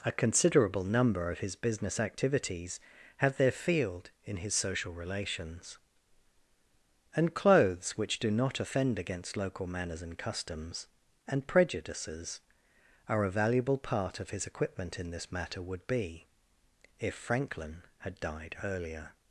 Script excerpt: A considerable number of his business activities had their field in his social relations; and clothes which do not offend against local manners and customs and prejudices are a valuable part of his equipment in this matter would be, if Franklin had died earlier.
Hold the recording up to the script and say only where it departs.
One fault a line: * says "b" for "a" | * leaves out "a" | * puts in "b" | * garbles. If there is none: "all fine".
* says "have" for "had"